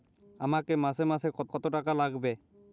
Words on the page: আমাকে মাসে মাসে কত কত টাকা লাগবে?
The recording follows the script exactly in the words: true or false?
true